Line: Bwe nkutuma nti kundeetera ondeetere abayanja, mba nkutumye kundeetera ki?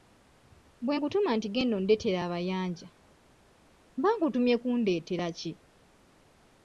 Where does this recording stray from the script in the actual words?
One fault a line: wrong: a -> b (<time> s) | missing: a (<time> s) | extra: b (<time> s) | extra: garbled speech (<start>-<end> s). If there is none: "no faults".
wrong: kundeetera -> genda (1.5 s)